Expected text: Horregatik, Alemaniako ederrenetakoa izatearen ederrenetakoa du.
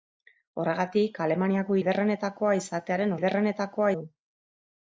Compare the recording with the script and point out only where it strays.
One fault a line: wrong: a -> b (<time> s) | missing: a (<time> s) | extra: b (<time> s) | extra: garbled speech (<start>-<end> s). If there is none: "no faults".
no faults